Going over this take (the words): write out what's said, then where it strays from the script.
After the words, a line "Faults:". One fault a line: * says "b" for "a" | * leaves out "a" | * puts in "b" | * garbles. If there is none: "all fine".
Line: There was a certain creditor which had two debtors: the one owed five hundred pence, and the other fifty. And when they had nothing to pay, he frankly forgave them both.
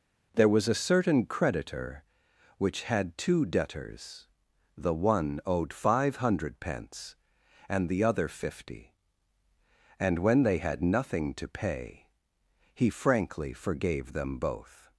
There was a certain creditor which had two debtors: the one owed five hundred pence, and the other fifty. And when they had nothing to pay, he frankly forgave them both.
Faults:
all fine